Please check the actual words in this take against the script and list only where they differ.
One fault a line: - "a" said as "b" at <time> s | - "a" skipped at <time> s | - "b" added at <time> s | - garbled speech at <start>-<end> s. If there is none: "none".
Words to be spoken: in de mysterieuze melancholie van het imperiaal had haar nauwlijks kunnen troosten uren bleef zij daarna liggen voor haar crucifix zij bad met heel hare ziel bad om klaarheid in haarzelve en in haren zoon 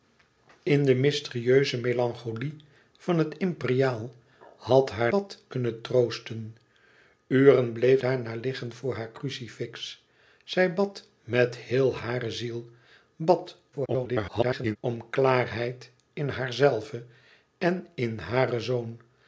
- "nauwlijks" said as "bad" at 5.1 s
- "zij" skipped at 8.0 s
- garbled speech at 13.7-14.8 s